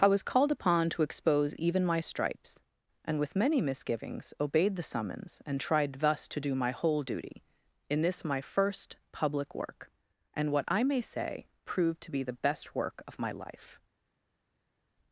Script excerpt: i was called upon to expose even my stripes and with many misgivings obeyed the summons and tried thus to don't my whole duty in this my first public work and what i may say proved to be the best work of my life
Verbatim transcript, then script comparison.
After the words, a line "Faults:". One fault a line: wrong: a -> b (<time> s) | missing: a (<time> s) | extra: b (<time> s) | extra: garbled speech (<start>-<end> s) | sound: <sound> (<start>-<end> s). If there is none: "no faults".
i was called upon to expose even my stripes and with many misgivings obeyed the summons and tried thus to do my whole duty in this my first public work and what i may say proved to be the best work of my life
Faults:
wrong: don't -> do (6.4 s)